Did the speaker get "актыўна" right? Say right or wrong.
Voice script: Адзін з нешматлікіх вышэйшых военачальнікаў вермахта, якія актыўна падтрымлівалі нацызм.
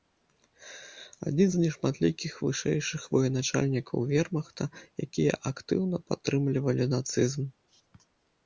right